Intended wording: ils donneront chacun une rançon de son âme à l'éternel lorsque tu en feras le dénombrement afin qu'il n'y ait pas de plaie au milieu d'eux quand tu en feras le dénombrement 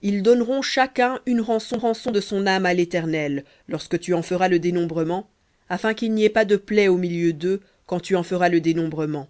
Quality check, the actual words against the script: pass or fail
fail